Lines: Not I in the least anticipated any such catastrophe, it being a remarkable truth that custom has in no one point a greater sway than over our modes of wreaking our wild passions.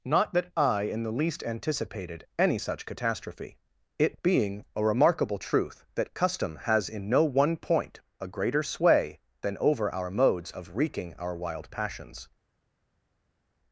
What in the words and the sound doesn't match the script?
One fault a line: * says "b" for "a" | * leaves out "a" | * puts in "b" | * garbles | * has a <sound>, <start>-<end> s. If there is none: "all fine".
* puts in "that"